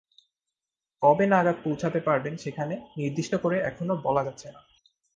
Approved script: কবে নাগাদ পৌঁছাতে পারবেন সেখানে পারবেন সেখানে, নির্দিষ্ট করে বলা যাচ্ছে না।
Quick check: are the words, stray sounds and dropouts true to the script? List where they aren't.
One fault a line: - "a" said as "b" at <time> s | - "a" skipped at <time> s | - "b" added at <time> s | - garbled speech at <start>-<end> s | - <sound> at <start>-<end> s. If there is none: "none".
- "পারবেন সেখানে" skipped at 2.8 s
- "এখনো" added at 3.6 s